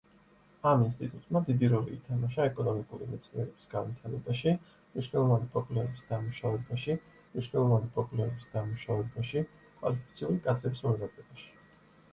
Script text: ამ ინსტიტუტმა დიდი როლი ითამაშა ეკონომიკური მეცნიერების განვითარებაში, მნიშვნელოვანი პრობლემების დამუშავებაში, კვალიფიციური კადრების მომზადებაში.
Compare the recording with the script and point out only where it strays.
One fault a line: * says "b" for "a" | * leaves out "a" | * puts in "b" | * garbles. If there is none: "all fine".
* puts in "მნიშვნელოვანი პრობლემების დამუშავებაში"